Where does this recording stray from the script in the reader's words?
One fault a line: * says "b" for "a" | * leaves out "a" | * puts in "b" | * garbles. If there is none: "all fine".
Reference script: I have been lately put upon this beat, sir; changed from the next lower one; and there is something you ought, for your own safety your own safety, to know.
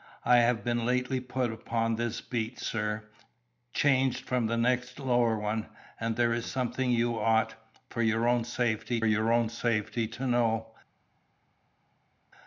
all fine